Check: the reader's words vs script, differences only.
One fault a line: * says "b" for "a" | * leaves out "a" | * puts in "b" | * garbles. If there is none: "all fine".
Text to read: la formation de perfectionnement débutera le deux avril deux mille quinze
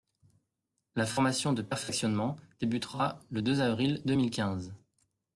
all fine